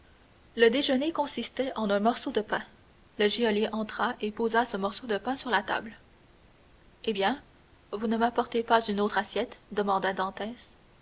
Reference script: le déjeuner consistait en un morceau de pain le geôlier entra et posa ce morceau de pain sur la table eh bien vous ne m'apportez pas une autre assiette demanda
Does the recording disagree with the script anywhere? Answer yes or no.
no